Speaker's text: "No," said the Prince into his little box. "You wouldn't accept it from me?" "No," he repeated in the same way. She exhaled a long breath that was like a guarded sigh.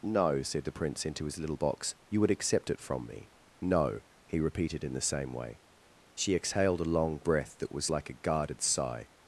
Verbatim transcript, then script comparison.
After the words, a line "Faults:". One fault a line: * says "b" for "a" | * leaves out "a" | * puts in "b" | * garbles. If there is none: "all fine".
"No," said the Prince into his little box. "You would accept it from me?" "No," he repeated in the same way. She exhaled a long breath that was like a guarded sigh.
Faults:
* says "would" for "wouldn't"